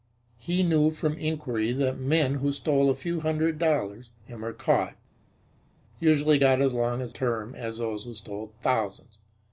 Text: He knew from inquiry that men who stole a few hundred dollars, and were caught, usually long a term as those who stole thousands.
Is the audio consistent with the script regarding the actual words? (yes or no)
no